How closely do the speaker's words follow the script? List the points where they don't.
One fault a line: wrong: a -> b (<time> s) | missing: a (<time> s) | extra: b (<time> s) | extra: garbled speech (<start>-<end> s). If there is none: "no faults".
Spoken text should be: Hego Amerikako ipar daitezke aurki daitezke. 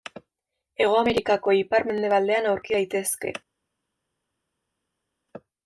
wrong: daitezke -> mendebaldean (1.9 s)